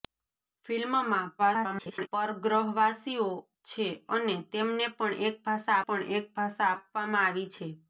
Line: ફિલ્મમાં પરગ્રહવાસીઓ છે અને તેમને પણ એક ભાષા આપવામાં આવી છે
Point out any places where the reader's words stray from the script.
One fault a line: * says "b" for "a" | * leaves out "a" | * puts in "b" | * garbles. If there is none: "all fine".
* garbles
* puts in "પણ એક ભાષા"